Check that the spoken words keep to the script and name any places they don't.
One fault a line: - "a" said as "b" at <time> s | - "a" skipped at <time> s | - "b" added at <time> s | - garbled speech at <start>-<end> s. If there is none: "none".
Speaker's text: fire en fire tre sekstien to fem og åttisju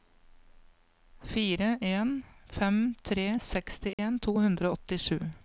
- "fire" said as "fem" at 2.5 s
- "fem" said as "hundre" at 4.4 s